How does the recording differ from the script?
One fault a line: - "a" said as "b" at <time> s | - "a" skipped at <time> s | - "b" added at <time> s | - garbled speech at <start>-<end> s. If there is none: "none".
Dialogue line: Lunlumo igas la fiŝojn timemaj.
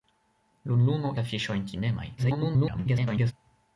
- "igas" skipped at 1.1 s
- garbled speech at 2.2-3.3 s